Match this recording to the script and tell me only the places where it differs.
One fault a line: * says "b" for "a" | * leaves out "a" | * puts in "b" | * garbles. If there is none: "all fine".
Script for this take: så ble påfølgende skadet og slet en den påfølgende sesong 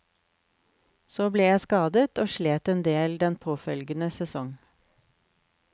* says "jeg" for "påfølgende"
* puts in "del"